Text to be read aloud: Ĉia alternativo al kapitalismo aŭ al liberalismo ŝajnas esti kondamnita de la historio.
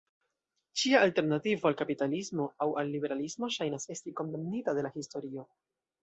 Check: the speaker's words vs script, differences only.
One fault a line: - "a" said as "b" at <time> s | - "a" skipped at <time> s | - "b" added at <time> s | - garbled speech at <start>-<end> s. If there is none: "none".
none